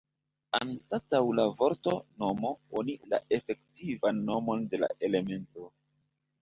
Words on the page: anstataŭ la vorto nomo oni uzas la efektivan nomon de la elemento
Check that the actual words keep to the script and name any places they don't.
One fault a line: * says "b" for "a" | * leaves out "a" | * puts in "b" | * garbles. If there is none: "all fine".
* leaves out "uzas"